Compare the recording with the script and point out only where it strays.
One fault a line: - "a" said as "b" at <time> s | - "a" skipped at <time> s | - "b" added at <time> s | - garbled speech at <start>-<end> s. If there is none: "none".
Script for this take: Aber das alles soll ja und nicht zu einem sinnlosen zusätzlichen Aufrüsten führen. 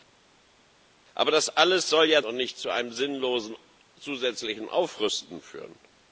none